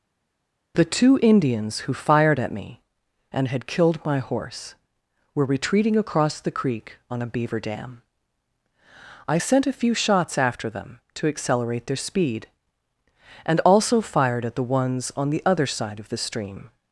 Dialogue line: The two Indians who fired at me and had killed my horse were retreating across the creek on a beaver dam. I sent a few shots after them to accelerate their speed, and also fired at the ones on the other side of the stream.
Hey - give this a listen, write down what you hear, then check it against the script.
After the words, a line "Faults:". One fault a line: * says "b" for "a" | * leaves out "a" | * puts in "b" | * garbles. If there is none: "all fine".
The two Indians who fired at me and had killed my horse were retreating across the creek on a beaver dam. I sent a few shots after them to accelerate their speed, and also fired at the ones on the other side of the stream.
Faults:
all fine